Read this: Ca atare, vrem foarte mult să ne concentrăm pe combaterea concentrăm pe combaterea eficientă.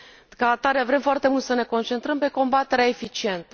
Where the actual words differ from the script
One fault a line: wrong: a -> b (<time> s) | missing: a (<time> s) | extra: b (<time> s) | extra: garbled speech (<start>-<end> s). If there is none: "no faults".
missing: concentrăm pe combaterea (2.9 s)